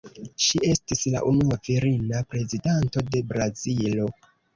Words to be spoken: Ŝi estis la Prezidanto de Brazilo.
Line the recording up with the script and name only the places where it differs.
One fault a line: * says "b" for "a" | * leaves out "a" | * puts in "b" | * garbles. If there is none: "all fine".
* puts in "unua virina"